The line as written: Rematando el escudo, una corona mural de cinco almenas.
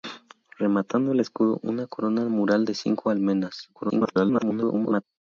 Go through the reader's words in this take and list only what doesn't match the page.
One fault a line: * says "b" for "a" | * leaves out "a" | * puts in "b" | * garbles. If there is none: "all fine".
* garbles